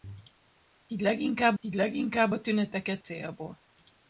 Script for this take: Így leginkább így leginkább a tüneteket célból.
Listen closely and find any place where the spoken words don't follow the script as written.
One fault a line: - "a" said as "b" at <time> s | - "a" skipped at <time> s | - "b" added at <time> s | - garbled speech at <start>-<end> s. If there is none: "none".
none